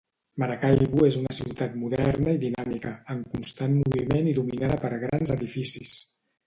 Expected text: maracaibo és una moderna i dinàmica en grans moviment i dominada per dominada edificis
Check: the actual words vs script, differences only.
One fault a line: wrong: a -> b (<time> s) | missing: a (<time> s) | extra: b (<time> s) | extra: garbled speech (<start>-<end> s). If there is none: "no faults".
extra: ciutat (1.4 s)
wrong: grans -> constant (3.3 s)
wrong: dominada -> grans (5.1 s)